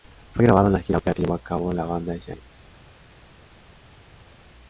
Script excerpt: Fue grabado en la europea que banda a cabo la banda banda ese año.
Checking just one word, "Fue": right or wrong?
right